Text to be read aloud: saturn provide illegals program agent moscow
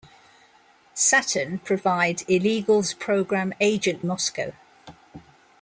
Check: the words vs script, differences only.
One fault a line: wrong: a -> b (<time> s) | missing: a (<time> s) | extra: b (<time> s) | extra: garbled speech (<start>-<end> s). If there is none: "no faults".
no faults